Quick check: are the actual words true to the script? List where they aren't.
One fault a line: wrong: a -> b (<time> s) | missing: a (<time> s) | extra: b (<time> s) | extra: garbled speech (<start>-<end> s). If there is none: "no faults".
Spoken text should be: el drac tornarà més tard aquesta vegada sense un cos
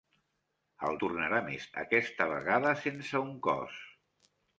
missing: drac (0.9 s)
missing: tard (1.6 s)